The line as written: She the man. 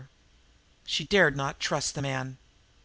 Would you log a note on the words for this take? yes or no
yes